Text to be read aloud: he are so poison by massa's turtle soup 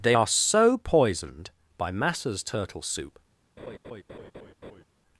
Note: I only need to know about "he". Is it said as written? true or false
false